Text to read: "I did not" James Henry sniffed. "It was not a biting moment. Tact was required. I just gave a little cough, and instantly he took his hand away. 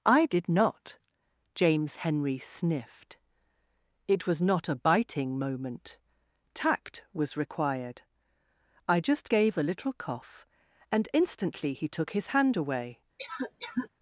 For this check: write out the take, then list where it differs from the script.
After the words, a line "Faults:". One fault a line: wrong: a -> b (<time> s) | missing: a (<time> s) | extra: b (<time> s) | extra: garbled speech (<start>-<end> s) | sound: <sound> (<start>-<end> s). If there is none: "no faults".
"I did not" James Henry sniffed. "It was not a biting moment. Tact was required. I just gave a little cough, and instantly he took his hand away.
Faults:
sound: cough (13.2-13.9 s)